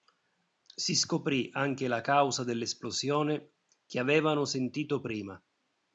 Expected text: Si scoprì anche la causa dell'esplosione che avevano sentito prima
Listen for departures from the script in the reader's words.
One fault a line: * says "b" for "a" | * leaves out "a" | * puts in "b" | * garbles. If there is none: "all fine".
all fine